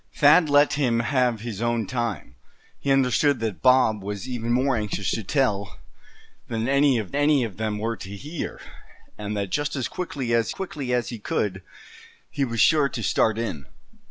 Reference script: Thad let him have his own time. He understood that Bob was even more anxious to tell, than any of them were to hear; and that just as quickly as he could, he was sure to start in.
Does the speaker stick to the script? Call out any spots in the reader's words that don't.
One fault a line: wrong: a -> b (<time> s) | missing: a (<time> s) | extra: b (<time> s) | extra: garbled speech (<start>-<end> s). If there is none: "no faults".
extra: any of (7.1 s)
extra: quickly as (10.5 s)